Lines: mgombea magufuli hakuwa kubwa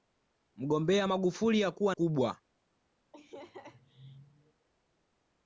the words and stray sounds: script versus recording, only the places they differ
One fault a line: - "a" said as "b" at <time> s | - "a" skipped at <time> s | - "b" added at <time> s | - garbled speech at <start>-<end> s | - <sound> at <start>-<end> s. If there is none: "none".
- laugh at 3.1-4.7 s